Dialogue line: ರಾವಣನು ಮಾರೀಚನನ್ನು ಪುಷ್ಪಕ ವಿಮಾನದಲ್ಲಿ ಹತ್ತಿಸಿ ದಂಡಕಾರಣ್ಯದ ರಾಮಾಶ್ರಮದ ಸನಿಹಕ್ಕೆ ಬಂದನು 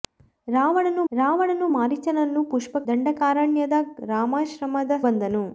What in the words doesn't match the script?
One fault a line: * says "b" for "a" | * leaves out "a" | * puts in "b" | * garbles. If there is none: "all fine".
* puts in "ರಾವಣನು"
* leaves out "ವಿಮಾನದಲ್ಲಿ ಹತ್ತಿಸಿ"
* leaves out "ಸನಿಹಕ್ಕೆ"